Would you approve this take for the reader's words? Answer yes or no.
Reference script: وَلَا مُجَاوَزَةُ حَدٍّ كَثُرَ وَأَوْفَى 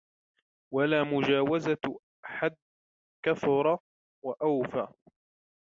yes